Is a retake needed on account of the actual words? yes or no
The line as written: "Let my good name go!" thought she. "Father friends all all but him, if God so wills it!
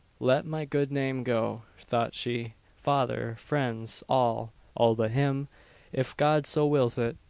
no